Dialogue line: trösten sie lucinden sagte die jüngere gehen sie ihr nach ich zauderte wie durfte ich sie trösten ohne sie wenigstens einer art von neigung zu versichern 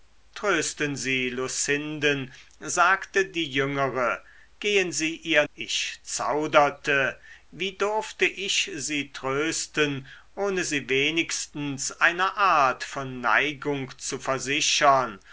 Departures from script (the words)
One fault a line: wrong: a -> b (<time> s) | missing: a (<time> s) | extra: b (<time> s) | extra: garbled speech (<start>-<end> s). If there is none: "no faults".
missing: nach (5.5 s)